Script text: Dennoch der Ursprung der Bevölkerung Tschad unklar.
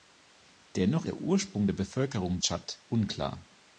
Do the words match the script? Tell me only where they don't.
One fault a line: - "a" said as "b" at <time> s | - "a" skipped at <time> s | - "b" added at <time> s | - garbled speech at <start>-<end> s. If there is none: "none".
none